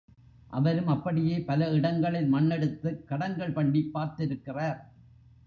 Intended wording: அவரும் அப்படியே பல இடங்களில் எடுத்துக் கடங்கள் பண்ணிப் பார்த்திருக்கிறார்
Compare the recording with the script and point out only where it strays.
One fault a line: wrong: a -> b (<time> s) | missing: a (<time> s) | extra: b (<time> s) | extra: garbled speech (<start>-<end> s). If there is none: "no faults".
extra: மண் (2.3 s)